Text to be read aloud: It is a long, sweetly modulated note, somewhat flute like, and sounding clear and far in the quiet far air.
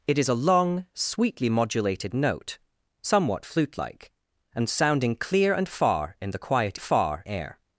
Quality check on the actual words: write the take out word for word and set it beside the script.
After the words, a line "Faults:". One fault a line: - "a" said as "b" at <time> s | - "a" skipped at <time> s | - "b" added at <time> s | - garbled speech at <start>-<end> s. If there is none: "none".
It is a long, sweetly modulated note, somewhat flute like, and sounding clear and far in the quiet far air.
Faults:
none